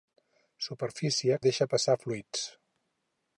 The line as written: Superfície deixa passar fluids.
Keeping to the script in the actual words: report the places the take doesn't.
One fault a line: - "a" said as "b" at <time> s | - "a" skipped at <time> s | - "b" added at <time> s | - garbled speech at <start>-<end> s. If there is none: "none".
none